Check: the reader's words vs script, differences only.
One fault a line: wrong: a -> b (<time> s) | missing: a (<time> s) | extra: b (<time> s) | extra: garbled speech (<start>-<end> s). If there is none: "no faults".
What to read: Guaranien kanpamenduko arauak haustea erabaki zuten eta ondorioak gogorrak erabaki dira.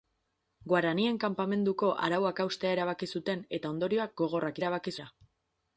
no faults